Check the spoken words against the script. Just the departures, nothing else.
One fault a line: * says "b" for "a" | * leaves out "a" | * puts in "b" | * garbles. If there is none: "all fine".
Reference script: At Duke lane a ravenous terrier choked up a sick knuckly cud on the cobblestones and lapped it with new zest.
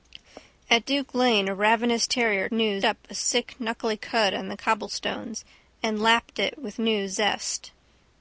* says "new" for "choked"